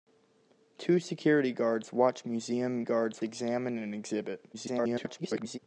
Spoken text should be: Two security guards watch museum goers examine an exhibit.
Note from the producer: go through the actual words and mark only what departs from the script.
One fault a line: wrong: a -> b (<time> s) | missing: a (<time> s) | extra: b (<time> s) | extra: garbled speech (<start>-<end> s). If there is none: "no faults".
wrong: goers -> guards (2.8 s)
extra: garbled speech (4.5-5.6 s)